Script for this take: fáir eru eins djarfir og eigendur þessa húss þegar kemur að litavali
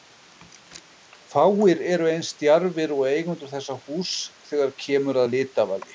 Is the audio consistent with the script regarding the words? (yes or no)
yes